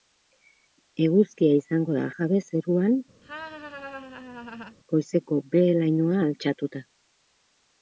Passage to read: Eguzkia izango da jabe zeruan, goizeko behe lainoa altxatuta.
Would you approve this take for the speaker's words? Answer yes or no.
yes